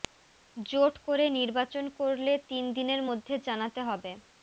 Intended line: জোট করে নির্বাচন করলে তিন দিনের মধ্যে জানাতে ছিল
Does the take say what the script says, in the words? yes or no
no